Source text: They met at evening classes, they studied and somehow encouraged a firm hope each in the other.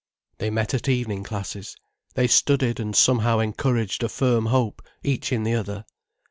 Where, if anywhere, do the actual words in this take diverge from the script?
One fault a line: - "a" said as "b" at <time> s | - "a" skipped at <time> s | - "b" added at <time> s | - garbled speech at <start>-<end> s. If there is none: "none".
none